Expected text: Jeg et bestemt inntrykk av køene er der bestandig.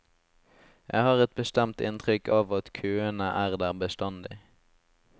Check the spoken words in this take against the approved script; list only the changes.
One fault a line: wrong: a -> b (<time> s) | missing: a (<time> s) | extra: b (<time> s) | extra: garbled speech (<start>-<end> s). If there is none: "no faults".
extra: har (1.1 s)
extra: at (2.6 s)